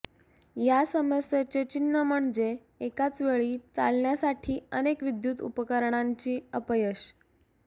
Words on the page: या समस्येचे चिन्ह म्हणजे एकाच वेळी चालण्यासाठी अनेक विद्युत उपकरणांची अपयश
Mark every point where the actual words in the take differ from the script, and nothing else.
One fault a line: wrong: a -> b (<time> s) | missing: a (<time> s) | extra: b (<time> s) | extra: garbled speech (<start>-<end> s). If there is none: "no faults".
no faults